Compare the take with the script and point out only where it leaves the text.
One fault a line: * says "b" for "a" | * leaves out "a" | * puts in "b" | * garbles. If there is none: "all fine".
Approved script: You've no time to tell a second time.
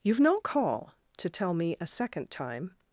* says "call" for "time"
* puts in "me"